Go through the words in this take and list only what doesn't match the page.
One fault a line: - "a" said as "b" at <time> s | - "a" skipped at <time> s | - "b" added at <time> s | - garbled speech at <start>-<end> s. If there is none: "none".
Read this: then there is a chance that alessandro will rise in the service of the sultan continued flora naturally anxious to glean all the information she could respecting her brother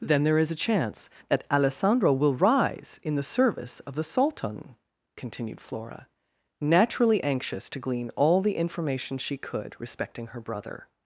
none